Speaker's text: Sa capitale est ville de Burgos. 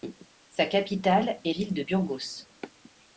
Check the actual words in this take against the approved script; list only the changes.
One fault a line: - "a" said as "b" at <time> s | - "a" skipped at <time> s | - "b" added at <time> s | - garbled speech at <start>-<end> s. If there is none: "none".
none